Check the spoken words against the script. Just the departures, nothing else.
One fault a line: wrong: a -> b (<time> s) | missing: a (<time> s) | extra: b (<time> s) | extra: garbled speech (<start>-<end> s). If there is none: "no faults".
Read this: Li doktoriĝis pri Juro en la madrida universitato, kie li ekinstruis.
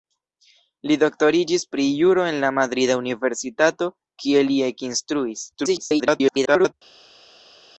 extra: garbled speech (5.5-6.7 s)